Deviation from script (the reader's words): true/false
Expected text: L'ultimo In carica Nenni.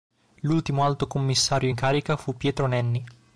true